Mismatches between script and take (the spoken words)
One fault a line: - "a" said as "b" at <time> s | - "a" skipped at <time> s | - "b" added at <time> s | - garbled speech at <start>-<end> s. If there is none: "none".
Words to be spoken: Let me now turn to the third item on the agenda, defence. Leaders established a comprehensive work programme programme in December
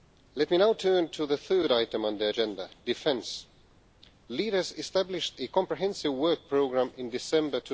- "programme" skipped at 6.9 s